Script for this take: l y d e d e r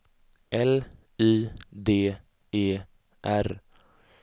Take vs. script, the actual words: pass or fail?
fail